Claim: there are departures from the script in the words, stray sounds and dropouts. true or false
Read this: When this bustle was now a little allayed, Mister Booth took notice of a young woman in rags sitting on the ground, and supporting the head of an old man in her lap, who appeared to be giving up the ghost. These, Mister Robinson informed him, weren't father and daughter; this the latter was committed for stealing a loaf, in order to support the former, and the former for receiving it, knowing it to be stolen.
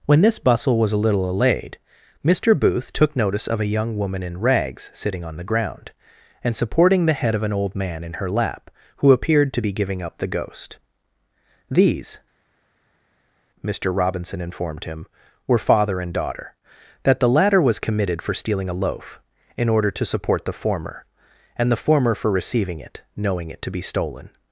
true